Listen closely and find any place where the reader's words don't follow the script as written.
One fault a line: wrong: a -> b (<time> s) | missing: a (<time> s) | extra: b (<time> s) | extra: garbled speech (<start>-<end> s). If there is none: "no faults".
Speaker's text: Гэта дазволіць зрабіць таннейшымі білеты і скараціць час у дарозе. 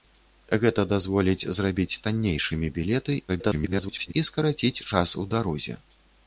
extra: garbled speech (3.3-4.1 s)